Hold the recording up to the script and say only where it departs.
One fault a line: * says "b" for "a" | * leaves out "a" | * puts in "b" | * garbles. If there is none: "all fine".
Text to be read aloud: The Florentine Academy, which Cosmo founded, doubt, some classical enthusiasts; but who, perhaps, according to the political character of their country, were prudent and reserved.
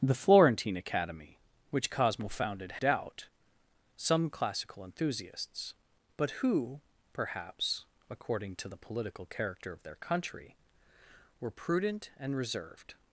all fine